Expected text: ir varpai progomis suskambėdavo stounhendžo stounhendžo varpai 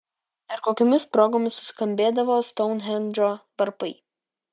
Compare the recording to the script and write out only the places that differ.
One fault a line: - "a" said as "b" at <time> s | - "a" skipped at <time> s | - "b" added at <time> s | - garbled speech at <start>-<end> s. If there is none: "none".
- "varpai" said as "kokiomis" at 0.7 s
- "stounhendžo" skipped at 3.3 s